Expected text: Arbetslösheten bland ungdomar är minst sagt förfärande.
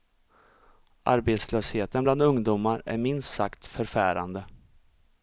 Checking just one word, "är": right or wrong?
right